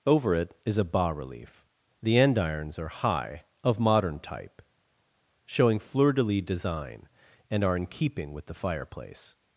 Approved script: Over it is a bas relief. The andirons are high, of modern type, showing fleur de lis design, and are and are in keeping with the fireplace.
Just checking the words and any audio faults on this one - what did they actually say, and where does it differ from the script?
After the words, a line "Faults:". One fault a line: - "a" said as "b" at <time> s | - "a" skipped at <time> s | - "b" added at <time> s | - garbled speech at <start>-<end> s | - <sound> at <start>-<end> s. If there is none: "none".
Over it is a bas relief. The andirons are high, of modern type, showing fleur de lis design, and are in keeping with the fireplace.
Faults:
- "and are" skipped at 7.8 s